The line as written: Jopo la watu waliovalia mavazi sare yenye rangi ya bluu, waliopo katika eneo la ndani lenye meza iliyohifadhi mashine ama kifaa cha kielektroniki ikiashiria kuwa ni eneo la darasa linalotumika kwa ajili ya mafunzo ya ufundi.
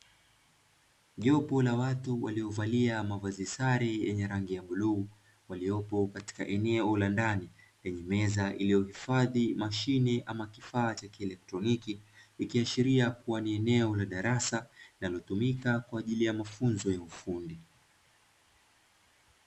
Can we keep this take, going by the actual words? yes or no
yes